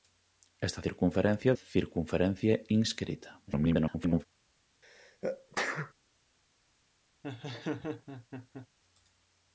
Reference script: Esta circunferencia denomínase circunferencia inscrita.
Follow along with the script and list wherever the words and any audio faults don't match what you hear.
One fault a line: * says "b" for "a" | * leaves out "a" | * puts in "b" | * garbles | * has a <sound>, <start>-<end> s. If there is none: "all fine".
* leaves out "denomínase"
* garbles
* has a sneeze, 4.8-5.9 s
* has a laugh, 7.2-8.7 s